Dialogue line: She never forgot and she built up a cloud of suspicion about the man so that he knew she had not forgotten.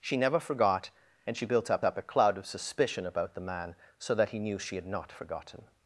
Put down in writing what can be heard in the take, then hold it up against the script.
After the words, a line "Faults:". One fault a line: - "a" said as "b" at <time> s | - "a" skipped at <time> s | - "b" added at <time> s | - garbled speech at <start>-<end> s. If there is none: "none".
She never forgot and she built up up a cloud of suspicion about the man so that he knew she had not forgotten.
Faults:
- "up" added at 1.8 s